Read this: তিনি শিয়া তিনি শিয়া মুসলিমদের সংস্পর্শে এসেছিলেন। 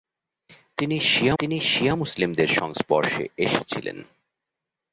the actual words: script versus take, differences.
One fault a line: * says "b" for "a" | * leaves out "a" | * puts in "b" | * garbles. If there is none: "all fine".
all fine